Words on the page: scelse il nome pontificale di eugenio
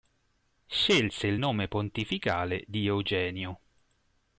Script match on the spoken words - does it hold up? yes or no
yes